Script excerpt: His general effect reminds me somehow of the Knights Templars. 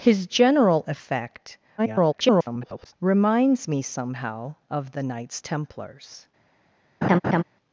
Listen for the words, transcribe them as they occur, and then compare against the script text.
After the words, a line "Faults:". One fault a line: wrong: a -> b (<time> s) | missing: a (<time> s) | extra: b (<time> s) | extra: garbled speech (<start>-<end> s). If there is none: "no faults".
His general effect [garbled] reminds me somehow of the Knights Templars.
Faults:
extra: garbled speech (1.8-2.9 s)